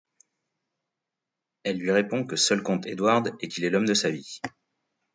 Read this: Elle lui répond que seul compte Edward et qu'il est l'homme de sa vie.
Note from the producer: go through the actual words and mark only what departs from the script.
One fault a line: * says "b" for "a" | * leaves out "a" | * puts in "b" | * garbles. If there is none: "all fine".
all fine